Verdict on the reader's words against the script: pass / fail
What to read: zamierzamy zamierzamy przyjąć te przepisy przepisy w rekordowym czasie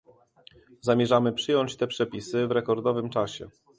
fail